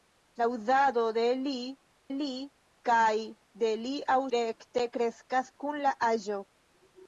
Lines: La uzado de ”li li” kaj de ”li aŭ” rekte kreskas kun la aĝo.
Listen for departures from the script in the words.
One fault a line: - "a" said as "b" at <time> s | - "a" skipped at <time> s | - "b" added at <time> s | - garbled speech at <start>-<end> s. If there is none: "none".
none